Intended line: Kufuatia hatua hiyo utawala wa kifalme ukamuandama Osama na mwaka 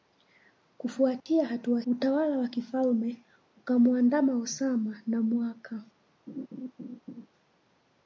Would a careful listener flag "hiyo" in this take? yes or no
yes